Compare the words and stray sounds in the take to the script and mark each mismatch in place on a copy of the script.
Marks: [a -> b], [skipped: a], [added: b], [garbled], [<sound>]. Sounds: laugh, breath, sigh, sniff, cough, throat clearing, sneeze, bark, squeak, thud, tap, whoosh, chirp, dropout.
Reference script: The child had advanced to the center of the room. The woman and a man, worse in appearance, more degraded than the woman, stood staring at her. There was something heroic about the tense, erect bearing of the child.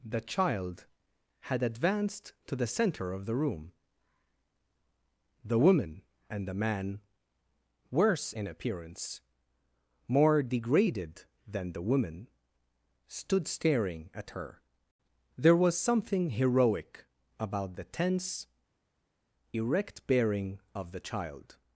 The child had advanced to the center of the room. The woman and [a -> the] man, worse in appearance, more degraded than the woman, stood staring at her. There was something heroic about the tense, erect bearing of the child.